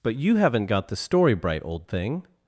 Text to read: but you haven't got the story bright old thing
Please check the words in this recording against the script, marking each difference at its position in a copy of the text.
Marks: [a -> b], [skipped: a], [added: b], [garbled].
but you haven't got the story bright old thing